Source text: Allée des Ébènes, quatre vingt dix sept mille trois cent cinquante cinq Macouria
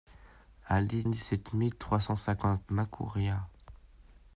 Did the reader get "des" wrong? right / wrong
wrong